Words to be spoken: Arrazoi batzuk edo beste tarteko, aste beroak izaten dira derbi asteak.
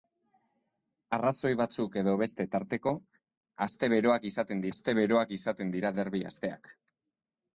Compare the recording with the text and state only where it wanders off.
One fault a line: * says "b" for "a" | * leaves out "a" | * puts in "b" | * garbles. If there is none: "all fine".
* puts in "aste beroak izaten"